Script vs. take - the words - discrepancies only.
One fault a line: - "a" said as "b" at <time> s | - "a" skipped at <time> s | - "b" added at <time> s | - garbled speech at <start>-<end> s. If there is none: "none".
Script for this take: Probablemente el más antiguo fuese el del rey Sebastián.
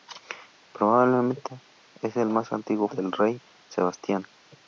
- "fuese el" skipped at 2.9 s